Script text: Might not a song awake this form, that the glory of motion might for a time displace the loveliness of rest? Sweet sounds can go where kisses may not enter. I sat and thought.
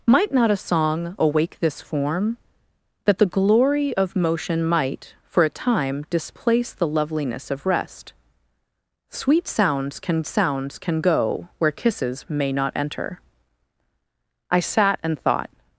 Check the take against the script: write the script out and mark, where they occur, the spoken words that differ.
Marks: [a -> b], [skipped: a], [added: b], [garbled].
Might not a song awake this form, that the glory of motion might for a time displace the loveliness of rest? Sweet sounds can [added: sounds can] go where kisses may not enter. I sat and thought.